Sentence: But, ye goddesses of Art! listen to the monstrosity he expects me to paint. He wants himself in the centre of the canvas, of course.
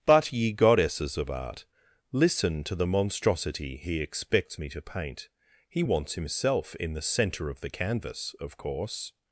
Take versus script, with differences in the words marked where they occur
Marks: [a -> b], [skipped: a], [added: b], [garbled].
But, ye goddesses of Art! listen to the monstrosity he expects me to paint. He wants himself in the centre of the canvas, of course.